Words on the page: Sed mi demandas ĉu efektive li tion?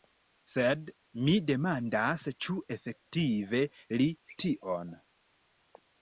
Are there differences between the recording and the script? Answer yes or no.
no